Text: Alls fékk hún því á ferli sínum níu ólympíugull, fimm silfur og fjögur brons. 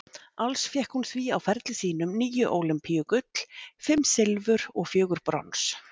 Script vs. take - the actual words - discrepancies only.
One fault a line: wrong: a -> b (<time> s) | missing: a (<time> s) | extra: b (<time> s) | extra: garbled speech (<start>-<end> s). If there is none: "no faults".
no faults